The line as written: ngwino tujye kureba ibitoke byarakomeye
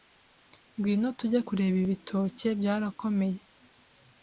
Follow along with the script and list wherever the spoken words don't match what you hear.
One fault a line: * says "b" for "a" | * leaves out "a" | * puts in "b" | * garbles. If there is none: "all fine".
all fine